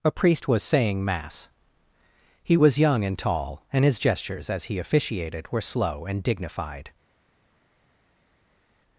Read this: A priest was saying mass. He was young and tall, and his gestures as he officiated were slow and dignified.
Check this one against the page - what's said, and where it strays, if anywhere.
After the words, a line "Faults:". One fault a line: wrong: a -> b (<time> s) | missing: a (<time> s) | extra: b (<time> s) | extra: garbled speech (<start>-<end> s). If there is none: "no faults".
A priest was saying mass. He was young and tall, and his gestures as he officiated were slow and dignified.
Faults:
no faults